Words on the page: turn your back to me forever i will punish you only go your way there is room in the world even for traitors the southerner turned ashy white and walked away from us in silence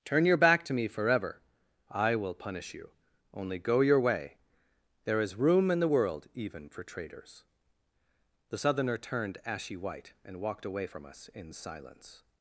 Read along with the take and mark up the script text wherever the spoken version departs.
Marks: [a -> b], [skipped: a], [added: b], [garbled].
turn your back to me forever i will punish you only go your way there is room in the world even for traitors the southerner turned ashy white and walked away from us in silence